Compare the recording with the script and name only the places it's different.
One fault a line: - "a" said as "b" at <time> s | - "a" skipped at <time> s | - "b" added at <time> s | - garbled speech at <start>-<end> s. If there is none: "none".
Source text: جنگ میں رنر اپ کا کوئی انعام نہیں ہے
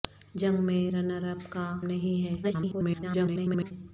- "کوئی انعام" skipped at 1.6 s
- garbled speech at 2.4-3.7 s